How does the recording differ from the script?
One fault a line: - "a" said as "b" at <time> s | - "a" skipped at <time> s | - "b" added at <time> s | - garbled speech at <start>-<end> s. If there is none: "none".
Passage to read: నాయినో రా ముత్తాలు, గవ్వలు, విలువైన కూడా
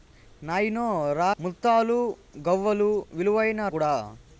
none